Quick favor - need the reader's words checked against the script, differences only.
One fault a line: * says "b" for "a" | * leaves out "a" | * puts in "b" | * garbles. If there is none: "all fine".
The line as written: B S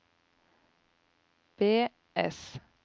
all fine